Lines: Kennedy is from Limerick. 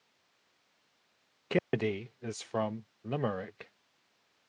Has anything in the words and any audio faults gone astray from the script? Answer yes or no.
yes